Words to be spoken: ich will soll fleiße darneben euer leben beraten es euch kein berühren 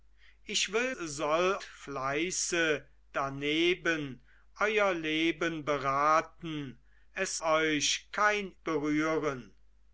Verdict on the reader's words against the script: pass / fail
pass